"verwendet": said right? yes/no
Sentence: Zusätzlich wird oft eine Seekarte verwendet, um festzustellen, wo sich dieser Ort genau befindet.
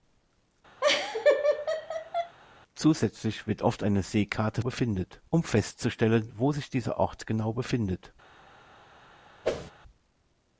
no